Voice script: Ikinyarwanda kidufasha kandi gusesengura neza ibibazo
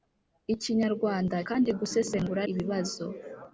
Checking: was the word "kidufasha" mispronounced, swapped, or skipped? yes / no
yes